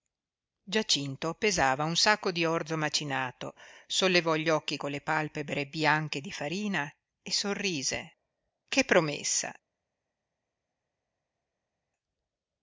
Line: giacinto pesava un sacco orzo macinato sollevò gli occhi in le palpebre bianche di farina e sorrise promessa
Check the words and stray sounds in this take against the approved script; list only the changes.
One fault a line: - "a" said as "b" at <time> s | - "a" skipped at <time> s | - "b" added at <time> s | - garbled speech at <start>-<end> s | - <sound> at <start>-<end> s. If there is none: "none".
- "di" added at 2.3 s
- "in" said as "con" at 4.8 s
- "che" added at 8.7 s